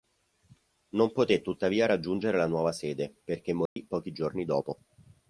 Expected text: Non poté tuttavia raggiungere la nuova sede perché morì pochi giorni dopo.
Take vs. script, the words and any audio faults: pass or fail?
fail